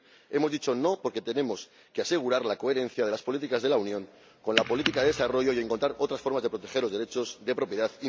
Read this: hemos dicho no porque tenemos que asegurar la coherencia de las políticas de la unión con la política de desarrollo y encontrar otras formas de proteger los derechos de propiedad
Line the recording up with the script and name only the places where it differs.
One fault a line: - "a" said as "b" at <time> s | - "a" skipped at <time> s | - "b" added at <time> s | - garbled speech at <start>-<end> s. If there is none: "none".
none